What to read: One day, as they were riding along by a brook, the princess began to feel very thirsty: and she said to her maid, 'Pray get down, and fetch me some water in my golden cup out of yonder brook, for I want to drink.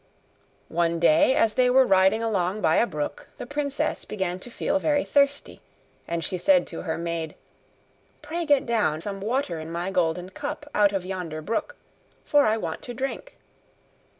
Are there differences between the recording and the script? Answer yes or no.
yes